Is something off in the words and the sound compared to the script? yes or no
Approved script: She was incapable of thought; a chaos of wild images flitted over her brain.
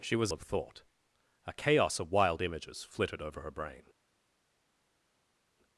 yes